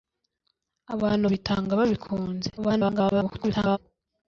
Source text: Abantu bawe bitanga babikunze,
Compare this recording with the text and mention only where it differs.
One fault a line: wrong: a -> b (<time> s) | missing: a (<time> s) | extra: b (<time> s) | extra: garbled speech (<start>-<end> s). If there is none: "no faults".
missing: bawe (1.2 s)
extra: garbled speech (2.6-3.8 s)